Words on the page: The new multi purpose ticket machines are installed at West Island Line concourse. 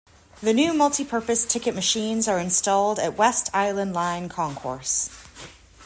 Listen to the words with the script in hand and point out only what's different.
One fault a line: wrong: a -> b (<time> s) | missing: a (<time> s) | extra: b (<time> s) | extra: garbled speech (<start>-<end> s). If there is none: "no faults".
no faults